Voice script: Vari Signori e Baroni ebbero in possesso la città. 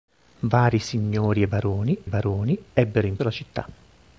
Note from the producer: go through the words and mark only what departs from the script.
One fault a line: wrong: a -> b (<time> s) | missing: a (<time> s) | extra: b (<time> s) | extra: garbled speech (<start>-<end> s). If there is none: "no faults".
extra: Baroni (2.1 s)
missing: possesso (3.2 s)